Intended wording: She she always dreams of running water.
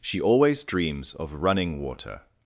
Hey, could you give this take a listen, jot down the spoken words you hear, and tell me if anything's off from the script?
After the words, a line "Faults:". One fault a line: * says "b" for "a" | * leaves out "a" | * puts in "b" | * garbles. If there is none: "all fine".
She always dreams of running water.
Faults:
* leaves out "she"